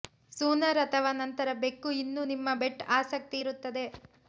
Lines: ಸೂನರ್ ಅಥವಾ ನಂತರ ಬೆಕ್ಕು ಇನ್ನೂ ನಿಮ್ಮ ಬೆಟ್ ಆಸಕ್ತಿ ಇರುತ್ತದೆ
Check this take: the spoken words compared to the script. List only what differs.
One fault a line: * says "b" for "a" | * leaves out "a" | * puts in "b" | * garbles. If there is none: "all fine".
all fine